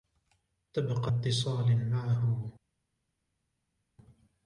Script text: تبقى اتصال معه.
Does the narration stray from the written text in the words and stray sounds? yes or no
no